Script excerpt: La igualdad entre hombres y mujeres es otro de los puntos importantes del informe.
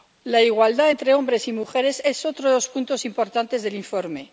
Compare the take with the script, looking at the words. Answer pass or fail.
pass